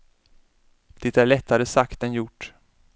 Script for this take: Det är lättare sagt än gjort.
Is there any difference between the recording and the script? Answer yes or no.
no